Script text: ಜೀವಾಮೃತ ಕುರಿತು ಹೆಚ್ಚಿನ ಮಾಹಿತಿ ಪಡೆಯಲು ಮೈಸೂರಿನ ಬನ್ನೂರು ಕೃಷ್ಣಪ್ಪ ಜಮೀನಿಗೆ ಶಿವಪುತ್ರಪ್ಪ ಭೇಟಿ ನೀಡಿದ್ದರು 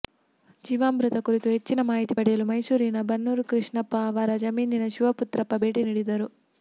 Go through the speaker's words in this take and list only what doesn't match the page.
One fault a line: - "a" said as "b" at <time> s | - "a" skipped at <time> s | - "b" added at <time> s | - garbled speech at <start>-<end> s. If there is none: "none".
- "ಅವರ" added at 4.1 s